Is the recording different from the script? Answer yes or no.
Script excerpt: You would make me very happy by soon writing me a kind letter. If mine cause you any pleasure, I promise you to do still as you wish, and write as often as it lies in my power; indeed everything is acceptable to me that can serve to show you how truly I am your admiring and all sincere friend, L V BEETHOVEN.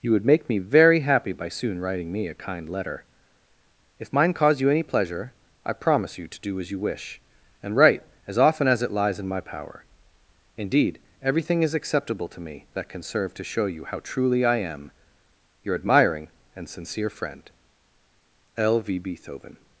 yes